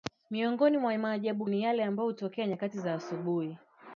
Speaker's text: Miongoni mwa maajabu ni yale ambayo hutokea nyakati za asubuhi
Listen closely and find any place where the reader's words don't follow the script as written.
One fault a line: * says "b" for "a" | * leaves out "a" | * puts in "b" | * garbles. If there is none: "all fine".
all fine